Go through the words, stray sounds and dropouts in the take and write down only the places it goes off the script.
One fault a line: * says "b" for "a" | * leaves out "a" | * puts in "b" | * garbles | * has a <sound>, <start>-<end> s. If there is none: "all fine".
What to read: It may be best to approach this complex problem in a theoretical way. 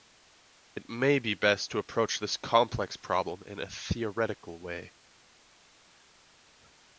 all fine